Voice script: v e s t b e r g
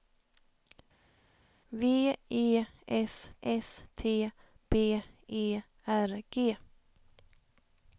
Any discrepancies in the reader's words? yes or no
yes